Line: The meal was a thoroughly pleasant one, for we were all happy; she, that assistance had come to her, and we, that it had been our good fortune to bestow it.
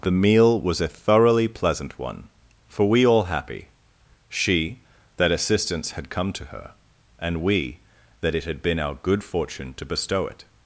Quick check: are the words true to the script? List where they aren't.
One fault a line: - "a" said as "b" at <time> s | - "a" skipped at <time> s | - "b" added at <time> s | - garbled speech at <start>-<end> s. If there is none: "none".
- "were" skipped at 3.0 s